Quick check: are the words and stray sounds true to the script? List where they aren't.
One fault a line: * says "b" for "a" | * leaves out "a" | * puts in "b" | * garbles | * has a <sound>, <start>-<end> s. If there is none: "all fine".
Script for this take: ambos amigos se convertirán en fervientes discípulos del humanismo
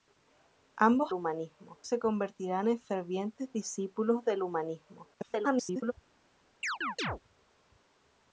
* says "humanismo" for "amigos"
* garbles
* has a chirp, 6.6-7.2 s